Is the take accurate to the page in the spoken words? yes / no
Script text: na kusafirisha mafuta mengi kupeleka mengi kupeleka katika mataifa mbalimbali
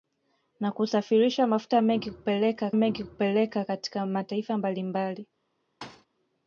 yes